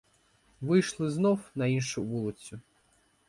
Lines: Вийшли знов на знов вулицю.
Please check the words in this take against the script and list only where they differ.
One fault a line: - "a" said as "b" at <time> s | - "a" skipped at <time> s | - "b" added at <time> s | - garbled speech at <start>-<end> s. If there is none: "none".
- "знов" said as "іншу" at 1.7 s